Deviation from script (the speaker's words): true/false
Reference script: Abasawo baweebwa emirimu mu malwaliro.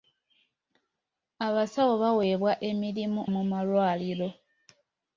false